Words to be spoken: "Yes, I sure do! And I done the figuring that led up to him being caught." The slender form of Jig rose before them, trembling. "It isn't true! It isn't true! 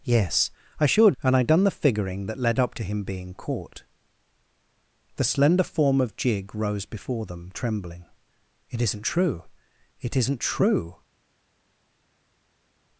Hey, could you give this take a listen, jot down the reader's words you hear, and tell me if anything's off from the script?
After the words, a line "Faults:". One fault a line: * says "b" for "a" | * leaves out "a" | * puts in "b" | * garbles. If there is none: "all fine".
"Yes, I sure! And I done the figuring that led up to him being caught." The slender form of Jig rose before them, trembling. "It isn't true! It isn't true!
Faults:
* leaves out "do"